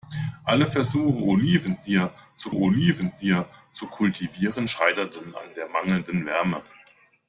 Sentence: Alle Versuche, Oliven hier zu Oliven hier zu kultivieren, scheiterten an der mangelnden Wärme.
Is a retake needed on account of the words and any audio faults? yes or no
no